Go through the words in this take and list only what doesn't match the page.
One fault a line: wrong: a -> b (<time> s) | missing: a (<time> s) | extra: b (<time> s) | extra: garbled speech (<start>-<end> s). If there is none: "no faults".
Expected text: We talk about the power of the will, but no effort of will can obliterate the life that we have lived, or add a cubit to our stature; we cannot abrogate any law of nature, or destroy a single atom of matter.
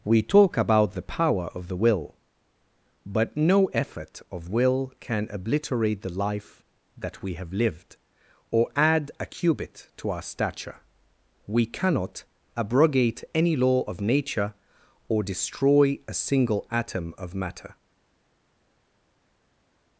no faults